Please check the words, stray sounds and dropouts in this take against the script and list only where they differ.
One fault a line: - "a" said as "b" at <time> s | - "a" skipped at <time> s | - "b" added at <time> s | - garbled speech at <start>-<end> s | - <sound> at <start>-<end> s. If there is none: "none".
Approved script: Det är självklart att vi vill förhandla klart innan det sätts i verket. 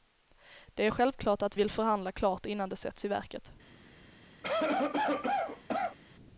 - "vi" skipped at 1.6 s
- cough at 4.4-6.0 s